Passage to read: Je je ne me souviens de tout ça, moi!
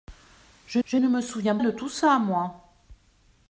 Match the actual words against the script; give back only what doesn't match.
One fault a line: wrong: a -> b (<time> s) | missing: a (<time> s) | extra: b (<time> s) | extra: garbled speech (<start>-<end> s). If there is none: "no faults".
no faults